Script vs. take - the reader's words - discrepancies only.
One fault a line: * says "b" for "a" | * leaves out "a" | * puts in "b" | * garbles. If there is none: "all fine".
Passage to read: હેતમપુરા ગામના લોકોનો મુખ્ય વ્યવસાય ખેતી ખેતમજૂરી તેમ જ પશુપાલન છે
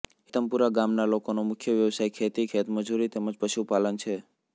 all fine